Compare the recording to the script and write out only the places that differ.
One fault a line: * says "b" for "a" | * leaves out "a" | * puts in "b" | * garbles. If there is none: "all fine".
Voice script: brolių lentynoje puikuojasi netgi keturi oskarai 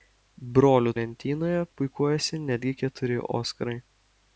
all fine